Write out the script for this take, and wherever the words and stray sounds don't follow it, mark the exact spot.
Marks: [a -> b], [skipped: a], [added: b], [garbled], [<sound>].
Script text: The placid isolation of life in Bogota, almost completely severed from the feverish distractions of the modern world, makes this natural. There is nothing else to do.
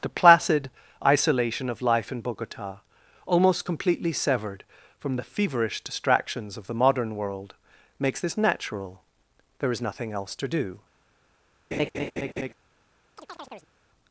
The placid isolation of life in Bogota, almost completely severed from the feverish distractions of the modern world, makes this natural. There is nothing else to do. [laugh] [chirp]